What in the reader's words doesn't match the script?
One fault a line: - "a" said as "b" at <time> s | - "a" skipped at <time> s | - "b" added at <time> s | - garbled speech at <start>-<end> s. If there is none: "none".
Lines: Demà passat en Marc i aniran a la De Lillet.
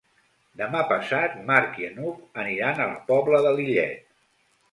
- "n'Hug" added at 2.0 s
- "Pobla" added at 3.1 s